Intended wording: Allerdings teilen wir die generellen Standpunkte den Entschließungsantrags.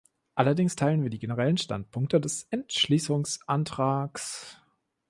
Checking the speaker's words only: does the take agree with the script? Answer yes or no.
no